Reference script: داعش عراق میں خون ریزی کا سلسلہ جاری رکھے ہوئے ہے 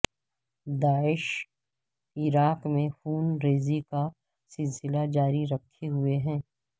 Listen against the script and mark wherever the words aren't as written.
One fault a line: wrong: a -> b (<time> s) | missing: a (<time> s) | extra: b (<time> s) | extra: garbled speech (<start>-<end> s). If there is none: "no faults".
no faults